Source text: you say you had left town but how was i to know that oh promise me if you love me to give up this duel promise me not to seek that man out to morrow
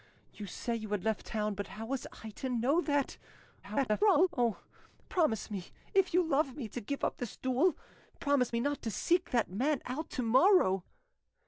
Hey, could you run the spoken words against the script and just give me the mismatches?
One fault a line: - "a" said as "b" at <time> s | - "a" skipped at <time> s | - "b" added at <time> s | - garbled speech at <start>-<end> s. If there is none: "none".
- garbled speech at 3.6-4.3 s